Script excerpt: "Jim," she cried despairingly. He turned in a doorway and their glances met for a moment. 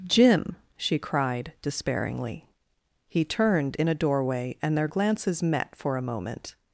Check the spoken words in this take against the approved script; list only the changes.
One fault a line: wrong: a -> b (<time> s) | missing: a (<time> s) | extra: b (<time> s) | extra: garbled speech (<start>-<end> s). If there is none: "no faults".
no faults